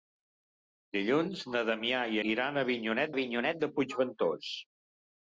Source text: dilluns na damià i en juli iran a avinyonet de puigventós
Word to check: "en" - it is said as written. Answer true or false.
false